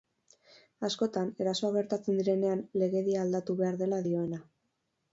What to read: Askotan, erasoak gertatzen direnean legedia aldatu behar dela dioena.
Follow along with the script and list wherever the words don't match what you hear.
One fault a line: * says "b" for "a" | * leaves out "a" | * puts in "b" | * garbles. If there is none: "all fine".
all fine